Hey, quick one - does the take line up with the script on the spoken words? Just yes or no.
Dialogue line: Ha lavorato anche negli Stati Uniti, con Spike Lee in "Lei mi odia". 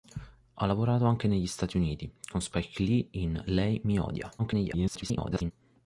no